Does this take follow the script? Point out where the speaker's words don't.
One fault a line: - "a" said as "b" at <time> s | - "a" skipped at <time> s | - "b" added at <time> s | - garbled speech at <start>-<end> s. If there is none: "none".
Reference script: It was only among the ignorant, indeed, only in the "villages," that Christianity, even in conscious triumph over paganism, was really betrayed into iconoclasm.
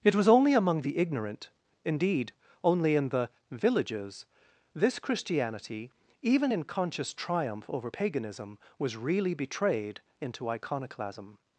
- "that" said as "this" at 4.7 s